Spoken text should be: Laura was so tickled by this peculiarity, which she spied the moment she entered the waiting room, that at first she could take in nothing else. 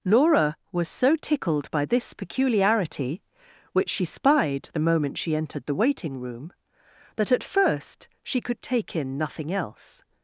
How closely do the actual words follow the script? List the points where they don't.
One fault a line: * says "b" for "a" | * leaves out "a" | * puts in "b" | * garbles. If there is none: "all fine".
all fine